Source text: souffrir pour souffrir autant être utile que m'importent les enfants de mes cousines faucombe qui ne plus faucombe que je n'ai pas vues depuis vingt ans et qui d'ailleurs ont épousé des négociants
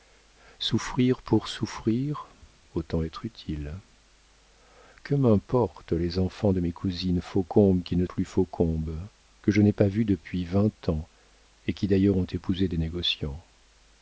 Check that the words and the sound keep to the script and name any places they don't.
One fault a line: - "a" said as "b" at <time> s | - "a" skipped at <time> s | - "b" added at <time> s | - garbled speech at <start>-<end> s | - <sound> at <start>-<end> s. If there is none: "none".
none